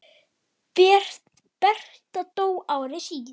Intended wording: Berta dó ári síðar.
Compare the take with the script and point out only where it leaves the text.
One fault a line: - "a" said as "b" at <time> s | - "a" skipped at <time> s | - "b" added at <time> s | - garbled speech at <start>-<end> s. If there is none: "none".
none